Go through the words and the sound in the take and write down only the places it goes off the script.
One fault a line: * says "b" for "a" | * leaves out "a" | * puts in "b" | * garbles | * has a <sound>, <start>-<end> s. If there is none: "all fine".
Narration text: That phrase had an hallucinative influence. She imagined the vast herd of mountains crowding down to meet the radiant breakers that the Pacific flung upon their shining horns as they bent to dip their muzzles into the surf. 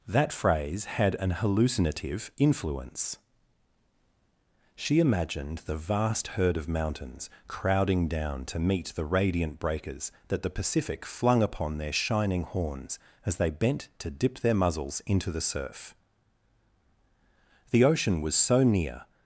* puts in "The ocean was so near"